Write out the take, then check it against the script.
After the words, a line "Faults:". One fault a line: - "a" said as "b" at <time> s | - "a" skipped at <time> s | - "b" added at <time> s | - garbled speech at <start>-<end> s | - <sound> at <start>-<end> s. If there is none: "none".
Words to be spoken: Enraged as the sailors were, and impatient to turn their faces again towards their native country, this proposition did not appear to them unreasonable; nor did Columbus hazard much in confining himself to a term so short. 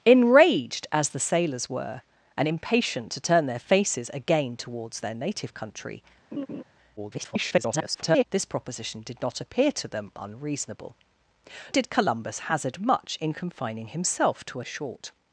Enraged as the sailors were, and impatient to turn their faces again towards their native country, [garbled] this proposition did not appear to them unreasonable; did Columbus hazard much in confining himself to a short.
Faults:
- laugh at 6.3-6.6 s
- garbled speech at 7.0-8.3 s
- "nor" skipped at 11.0 s
- "term so" skipped at 14.6 s